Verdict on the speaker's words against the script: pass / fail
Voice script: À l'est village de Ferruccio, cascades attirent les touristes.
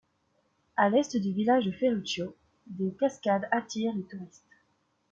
fail